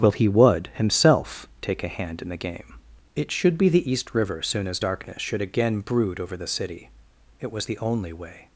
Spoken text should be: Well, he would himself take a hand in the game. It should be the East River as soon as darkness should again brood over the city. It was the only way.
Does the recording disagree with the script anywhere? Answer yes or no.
yes